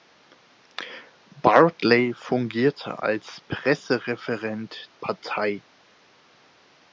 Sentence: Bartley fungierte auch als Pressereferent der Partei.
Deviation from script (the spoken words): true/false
true